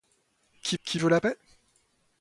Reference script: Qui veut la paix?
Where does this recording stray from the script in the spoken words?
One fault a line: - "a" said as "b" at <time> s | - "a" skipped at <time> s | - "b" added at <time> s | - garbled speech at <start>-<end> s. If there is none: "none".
- "qui" added at 0.8 s